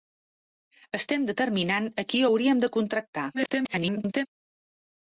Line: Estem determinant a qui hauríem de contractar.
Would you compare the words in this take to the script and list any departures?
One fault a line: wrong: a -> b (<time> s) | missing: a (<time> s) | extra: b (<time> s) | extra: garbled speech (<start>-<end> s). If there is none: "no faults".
extra: garbled speech (3.3-4.3 s)